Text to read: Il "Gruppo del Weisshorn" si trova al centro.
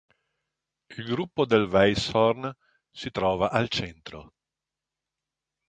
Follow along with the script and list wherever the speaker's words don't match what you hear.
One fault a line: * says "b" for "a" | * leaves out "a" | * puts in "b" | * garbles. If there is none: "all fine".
all fine